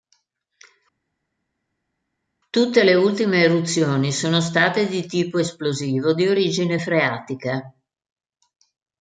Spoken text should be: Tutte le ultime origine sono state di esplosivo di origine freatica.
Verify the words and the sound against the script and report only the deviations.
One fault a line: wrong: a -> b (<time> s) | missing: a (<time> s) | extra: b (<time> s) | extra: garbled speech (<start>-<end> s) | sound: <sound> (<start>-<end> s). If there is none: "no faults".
wrong: origine -> eruzioni (3.4 s)
extra: tipo (5.1 s)